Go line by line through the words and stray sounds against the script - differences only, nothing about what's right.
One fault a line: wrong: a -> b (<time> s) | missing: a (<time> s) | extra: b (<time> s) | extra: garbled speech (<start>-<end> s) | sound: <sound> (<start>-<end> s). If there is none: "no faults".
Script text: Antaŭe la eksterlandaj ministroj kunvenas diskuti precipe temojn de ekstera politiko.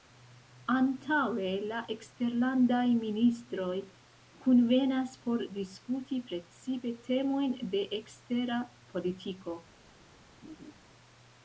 extra: por (5.3 s)
sound: laugh (10.4-10.7 s)